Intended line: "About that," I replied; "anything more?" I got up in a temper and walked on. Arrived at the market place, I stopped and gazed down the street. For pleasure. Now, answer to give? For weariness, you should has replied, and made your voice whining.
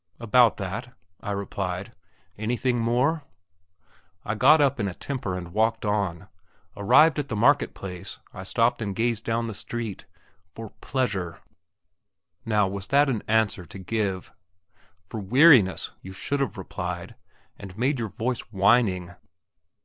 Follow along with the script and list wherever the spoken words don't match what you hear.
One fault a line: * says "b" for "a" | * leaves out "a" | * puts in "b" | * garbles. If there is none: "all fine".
* puts in "was that an"
* says "have" for "has"